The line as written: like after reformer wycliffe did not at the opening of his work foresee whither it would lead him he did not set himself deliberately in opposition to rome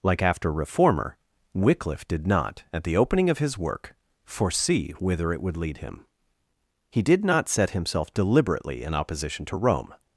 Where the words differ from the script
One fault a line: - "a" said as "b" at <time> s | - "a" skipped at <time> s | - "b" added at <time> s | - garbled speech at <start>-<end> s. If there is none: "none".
none